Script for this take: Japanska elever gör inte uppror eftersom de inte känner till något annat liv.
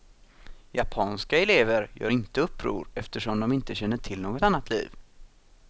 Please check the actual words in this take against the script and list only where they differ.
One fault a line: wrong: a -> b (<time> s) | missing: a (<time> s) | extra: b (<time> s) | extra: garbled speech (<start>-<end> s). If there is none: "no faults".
no faults